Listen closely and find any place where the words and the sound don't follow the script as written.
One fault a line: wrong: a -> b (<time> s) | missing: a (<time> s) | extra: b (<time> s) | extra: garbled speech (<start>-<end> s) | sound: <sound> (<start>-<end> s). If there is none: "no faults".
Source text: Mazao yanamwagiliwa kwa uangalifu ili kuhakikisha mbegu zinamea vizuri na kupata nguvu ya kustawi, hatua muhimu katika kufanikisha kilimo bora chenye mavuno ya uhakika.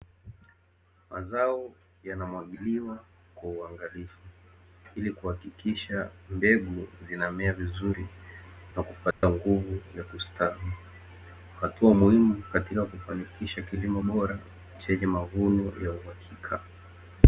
sound: dropout (9.1-9.2 s)